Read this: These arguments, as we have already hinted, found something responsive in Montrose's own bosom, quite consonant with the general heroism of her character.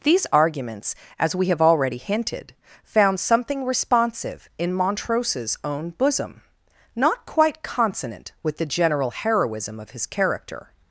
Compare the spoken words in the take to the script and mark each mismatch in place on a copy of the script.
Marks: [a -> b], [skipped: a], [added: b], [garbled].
These arguments, as we have already hinted, found something responsive in Montrose's own bosom, [added: not] quite consonant with the general heroism of [her -> his] character.